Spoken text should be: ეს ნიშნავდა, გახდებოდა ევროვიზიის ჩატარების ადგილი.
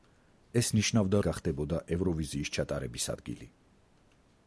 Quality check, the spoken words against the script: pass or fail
pass